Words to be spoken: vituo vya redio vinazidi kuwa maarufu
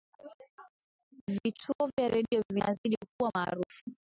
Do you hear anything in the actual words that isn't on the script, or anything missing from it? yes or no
no